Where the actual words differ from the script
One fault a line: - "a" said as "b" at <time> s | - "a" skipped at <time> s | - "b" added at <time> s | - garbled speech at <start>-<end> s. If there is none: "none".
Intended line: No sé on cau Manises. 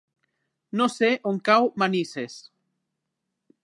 none